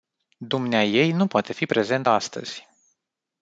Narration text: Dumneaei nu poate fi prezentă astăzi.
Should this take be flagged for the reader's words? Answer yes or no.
no